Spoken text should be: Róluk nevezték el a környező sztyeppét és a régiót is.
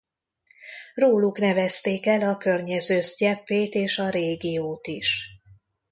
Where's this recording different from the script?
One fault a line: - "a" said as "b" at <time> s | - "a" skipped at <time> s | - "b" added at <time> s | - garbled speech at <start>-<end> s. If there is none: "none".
none